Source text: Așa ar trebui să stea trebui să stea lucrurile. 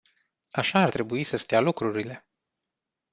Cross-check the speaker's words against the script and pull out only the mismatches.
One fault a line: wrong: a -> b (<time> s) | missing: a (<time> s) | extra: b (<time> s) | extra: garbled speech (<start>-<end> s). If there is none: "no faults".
missing: trebui să stea (1.6 s)